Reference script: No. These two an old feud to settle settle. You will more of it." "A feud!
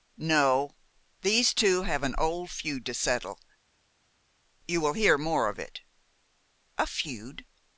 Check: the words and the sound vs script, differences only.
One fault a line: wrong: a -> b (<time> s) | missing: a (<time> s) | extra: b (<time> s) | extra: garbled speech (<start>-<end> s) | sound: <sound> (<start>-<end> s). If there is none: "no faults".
extra: have (1.8 s)
missing: settle (3.4 s)
extra: hear (4.9 s)